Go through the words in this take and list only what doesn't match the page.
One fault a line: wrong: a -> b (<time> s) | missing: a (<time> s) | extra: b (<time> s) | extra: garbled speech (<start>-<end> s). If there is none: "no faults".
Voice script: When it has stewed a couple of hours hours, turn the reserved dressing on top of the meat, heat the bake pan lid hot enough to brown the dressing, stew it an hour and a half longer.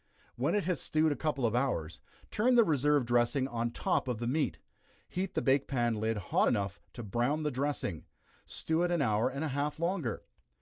missing: hours (2.0 s)